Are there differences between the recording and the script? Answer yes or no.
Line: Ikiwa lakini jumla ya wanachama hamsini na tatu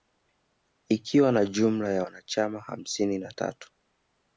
yes